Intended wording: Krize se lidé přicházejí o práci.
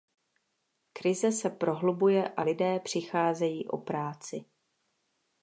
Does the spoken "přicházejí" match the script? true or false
true